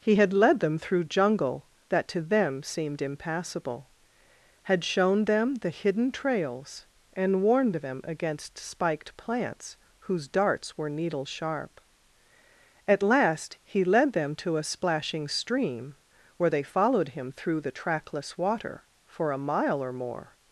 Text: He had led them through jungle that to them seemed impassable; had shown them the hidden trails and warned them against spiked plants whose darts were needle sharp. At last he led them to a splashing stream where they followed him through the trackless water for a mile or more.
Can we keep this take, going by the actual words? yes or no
yes